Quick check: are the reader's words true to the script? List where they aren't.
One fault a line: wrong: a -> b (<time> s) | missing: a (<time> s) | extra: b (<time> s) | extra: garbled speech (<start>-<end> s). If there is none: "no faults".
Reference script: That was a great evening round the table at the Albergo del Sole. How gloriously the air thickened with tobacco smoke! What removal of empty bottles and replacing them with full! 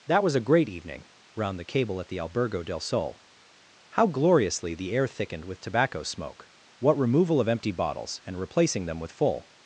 wrong: table -> cable (1.6 s)